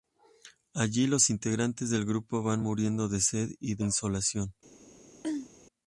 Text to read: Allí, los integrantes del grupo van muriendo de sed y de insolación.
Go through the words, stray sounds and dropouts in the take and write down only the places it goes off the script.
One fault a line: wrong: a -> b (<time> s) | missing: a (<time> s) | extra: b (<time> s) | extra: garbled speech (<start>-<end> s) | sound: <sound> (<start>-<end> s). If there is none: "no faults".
sound: throat clearing (5.2-5.5 s)